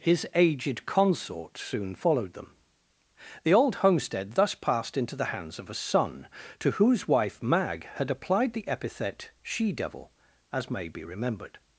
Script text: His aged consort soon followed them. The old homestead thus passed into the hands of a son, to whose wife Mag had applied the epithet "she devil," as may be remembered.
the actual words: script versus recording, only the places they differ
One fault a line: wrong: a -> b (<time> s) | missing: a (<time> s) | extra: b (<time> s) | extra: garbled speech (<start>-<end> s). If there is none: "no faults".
no faults